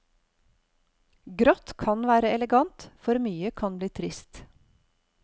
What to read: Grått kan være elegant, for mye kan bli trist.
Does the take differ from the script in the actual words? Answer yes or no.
no